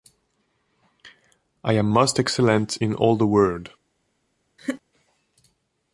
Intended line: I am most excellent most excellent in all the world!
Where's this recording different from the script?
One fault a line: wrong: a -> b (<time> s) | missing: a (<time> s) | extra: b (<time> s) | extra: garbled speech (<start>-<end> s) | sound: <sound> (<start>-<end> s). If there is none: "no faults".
missing: most excellent (2.8 s)
sound: laugh (4.6-4.8 s)